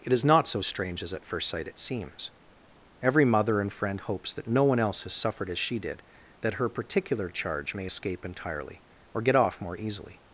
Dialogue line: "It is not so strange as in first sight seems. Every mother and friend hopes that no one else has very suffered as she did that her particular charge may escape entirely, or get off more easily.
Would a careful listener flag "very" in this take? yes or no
yes